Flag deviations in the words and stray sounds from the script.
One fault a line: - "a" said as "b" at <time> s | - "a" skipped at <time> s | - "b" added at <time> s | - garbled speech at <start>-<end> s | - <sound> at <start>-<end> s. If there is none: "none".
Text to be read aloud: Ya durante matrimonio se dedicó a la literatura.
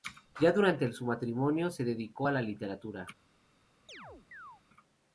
- "su" added at 0.9 s
- chirp at 3.9-4.6 s